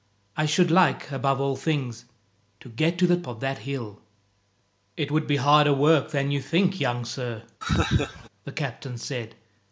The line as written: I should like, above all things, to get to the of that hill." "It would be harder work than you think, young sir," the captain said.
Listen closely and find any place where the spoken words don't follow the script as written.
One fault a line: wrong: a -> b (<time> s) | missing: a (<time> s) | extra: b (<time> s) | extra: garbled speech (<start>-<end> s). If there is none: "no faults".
no faults